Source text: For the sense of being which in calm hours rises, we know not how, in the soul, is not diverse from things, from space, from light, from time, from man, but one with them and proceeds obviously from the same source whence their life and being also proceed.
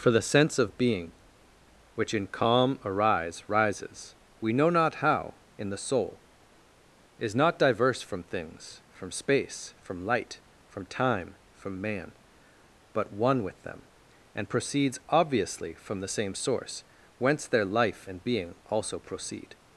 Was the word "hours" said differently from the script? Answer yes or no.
yes